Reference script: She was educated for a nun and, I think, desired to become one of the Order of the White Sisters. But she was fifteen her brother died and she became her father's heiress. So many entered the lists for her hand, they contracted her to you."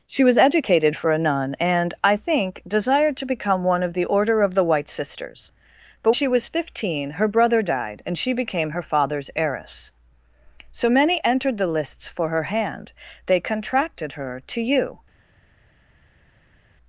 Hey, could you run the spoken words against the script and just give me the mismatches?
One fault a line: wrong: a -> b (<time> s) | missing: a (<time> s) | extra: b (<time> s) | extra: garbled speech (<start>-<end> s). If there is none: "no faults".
no faults